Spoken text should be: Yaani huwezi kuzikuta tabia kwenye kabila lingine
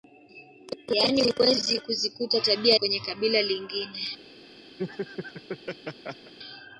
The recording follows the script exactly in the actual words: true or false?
true